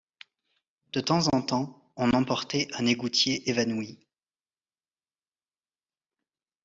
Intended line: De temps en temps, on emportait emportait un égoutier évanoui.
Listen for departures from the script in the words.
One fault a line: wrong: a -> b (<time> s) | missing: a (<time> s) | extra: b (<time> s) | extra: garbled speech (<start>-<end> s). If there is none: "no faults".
missing: emportait (2.7 s)